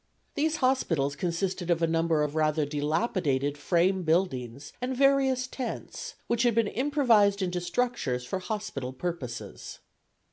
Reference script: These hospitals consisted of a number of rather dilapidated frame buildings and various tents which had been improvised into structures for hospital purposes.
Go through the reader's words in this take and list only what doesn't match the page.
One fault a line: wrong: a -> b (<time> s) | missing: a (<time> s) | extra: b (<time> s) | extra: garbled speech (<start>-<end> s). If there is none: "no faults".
no faults